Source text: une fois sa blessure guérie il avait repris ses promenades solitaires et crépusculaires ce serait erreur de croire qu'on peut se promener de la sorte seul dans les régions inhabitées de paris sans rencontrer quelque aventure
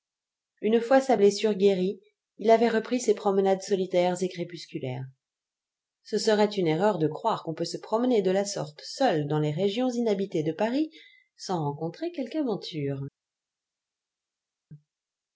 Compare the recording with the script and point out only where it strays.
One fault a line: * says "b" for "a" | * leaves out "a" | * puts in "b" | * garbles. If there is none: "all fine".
* puts in "une"